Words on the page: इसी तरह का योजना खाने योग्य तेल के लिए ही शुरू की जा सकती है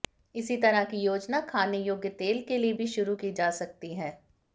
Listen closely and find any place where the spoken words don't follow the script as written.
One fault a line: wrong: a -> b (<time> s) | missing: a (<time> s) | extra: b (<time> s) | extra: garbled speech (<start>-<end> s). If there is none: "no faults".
wrong: का -> की (0.8 s)
wrong: ही -> भी (2.7 s)